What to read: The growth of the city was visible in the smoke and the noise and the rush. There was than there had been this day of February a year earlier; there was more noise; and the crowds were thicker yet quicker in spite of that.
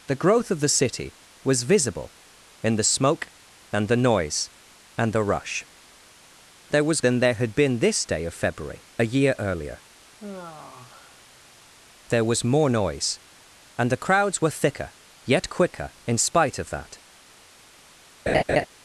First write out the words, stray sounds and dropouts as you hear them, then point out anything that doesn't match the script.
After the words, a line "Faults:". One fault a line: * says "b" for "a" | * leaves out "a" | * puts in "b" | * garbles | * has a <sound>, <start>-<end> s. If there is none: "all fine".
The growth of the city was visible in the smoke and the noise and the rush. There was than there had been this day of February a year earlier; there was more noise; and the crowds were thicker yet quicker in spite of that.
Faults:
* has a sigh, 10.2-11.7 s
* has a laugh, 18.3-18.7 s